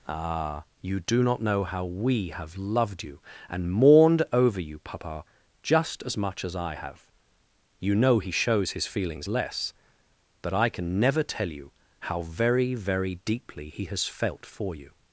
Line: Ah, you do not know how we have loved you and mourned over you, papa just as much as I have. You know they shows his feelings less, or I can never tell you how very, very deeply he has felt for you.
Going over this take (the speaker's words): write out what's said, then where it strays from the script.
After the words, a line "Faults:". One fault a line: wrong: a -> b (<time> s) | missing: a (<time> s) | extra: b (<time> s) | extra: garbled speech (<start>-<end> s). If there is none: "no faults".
Ah, you do not know how we have loved you and mourned over you, papa just as much as I have. You know he shows his feelings less, but I can never tell you how very, very deeply he has felt for you.
Faults:
wrong: they -> he (8.2 s)
wrong: or -> but (10.4 s)